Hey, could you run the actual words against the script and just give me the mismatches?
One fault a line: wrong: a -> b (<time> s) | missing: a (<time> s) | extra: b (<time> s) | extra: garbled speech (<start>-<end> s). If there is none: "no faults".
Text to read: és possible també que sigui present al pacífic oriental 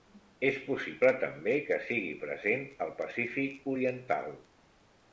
no faults